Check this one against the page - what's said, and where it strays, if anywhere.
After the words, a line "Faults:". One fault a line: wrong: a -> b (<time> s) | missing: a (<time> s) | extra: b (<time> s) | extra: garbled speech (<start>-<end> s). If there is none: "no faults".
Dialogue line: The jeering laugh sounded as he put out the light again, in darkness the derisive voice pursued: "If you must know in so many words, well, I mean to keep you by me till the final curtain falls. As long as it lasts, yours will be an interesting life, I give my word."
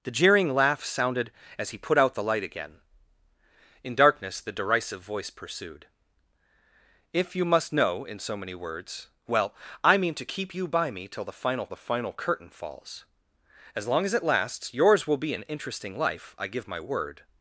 The jeering laugh sounded as he put out the light again, in darkness the derisive voice pursued: "If you must know in so many words, well, I mean to keep you by me till the final the final curtain falls. As long as it lasts, yours will be an interesting life, I give my word."
Faults:
extra: the final (11.7 s)